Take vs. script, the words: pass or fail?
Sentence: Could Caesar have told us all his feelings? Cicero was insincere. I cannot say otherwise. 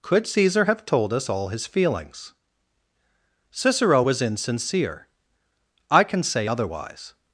fail